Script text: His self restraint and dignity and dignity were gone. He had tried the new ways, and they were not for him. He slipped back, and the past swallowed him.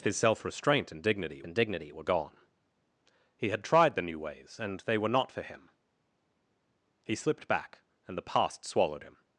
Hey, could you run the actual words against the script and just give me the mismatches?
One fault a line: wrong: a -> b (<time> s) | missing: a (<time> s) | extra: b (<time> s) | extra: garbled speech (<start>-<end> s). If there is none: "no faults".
no faults